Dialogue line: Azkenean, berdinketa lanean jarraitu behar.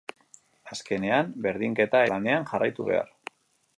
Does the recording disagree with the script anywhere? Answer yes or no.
no